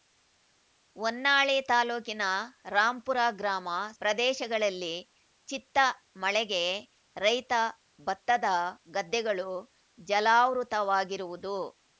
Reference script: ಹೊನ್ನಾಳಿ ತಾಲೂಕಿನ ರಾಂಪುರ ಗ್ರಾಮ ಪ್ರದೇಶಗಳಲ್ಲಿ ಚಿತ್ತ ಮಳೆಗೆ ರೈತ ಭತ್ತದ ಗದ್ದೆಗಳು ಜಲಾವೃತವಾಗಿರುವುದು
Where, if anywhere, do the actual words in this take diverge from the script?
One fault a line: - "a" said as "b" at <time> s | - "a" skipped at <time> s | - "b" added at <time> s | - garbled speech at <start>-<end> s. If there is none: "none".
none